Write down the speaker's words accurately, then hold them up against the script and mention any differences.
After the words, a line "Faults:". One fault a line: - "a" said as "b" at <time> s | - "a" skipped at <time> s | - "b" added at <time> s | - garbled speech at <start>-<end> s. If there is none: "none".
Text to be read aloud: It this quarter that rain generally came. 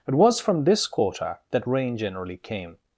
It was from this quarter that rain generally came.
Faults:
- "was from" added at 0.1 s